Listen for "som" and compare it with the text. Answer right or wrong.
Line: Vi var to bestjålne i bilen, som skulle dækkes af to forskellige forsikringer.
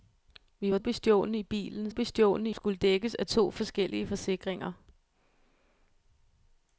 wrong